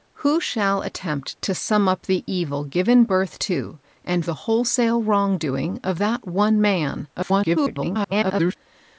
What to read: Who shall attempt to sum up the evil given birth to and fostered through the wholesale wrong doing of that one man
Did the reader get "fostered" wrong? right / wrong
wrong